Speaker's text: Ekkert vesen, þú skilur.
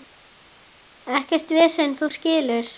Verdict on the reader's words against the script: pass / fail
pass